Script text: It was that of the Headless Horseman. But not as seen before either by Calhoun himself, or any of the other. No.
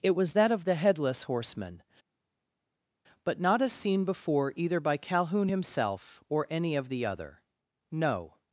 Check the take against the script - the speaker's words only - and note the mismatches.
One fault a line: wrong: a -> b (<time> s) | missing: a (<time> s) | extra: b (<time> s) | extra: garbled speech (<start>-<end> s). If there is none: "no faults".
no faults